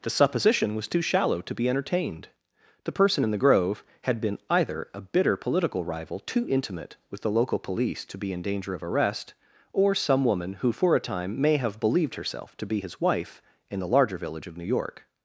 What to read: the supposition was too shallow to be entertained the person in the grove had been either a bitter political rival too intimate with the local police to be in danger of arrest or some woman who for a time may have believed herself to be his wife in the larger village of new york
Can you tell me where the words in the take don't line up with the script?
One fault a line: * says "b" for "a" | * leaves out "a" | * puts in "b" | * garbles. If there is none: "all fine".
all fine